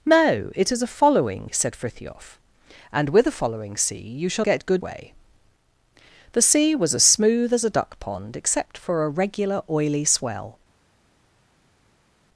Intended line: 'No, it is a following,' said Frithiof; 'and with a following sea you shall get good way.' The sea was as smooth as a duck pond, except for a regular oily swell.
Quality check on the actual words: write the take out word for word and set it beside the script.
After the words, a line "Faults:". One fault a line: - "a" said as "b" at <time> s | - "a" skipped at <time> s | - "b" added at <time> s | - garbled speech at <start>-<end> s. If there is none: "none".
'No, it is a following,' said Frithiof; 'and with a following sea you shall get good way.' The sea was as smooth as a duck pond, except for a regular oily swell.
Faults:
none